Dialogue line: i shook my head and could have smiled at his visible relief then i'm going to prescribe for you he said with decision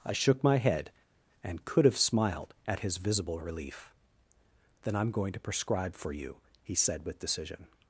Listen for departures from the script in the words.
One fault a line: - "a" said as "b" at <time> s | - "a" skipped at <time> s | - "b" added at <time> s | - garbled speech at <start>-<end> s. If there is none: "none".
none